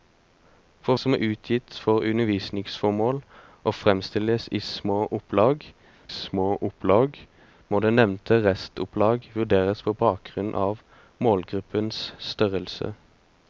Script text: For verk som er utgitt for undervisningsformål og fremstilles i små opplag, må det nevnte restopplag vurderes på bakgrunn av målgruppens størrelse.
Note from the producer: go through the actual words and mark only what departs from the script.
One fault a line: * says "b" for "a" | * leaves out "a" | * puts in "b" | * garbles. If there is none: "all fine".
* leaves out "verk"
* puts in "små opplag"